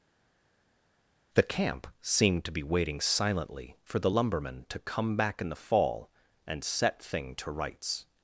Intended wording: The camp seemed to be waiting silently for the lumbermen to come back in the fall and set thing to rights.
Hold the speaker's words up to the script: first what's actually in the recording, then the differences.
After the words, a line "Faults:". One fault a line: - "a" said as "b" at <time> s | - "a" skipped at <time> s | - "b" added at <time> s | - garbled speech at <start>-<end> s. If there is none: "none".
The camp seemed to be waiting silently for the lumbermen to come back in the fall and set thing to rights.
Faults:
none